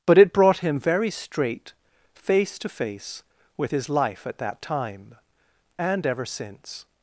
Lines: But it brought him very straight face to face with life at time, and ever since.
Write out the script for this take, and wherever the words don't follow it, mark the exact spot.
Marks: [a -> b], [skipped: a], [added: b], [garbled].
But it brought him very straight face to face with [added: his] life at [added: that] time, and ever since.